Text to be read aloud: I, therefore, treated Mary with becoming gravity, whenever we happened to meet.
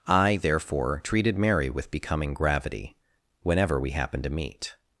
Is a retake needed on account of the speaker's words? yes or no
no